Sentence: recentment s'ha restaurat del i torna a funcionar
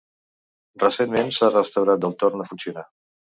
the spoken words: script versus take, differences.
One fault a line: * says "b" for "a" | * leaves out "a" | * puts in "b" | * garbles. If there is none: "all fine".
all fine